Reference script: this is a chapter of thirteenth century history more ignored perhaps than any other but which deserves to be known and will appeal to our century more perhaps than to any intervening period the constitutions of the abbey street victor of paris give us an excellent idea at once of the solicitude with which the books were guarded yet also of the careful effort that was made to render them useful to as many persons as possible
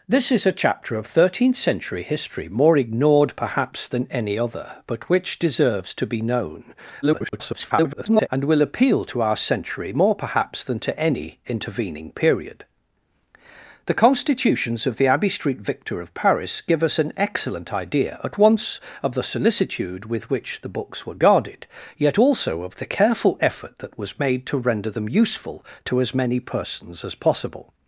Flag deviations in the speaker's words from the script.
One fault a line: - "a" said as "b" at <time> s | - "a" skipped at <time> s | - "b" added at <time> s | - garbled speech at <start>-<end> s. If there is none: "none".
- garbled speech at 7.0-8.3 s